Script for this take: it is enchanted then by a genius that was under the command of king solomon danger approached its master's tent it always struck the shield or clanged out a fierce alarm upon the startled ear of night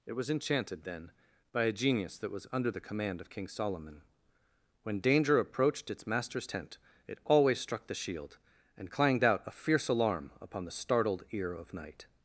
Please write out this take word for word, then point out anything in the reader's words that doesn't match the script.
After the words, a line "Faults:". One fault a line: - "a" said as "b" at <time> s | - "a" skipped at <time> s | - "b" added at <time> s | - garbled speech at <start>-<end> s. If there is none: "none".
it was enchanted then by a genius that was under the command of king solomon when danger approached its master's tent it always struck the shield and clanged out a fierce alarm upon the startled ear of night
Faults:
- "is" said as "was" at 0.1 s
- "when" added at 4.8 s
- "or" said as "and" at 8.8 s